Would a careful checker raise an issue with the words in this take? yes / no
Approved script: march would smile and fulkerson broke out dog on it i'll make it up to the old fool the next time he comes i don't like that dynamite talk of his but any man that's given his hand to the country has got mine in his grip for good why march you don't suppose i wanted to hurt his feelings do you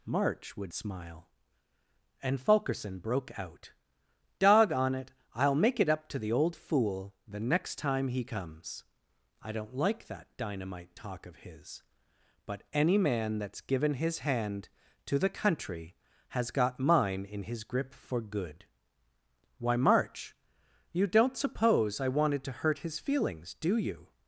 no